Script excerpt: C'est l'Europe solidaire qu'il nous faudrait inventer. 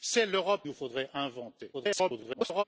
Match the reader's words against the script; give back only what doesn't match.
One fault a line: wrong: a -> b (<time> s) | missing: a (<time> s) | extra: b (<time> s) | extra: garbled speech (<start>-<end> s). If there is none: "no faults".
missing: solidaire qu'il (0.7 s)
extra: garbled speech (1.7-2.6 s)